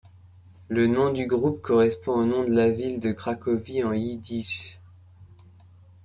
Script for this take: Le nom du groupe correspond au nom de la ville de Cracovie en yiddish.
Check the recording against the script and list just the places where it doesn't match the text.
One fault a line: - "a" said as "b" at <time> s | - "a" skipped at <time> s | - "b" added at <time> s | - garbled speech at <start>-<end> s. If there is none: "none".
none